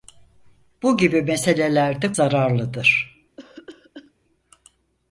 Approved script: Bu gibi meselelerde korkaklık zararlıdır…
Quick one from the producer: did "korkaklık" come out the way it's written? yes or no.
no